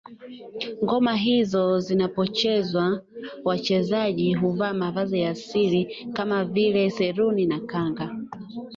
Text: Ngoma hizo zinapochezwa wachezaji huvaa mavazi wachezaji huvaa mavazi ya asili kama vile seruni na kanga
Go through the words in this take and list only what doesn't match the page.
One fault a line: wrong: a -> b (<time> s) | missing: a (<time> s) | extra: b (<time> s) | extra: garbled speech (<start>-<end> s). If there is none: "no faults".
missing: wachezaji huvaa mavazi (5.2 s)